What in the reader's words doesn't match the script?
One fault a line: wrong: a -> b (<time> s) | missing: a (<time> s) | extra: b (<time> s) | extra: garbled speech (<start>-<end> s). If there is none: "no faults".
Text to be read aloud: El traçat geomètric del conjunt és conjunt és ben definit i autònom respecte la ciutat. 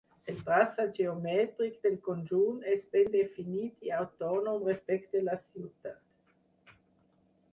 missing: conjunt és (2.8 s)